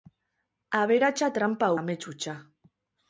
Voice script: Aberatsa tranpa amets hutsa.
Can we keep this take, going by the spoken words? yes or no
yes